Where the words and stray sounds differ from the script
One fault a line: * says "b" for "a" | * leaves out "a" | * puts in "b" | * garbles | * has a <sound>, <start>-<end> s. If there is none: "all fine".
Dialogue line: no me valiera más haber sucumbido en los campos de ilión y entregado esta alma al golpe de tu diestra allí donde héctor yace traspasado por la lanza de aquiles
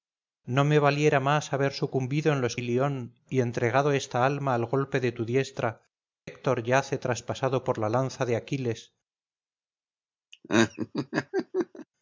* leaves out "campos de"
* leaves out "allí donde"
* has a laugh, 10.3-11.9 s